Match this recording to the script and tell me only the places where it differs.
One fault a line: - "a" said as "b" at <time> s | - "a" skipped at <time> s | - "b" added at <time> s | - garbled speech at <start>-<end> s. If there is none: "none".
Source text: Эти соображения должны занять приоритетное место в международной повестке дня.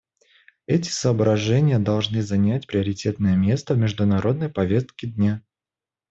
none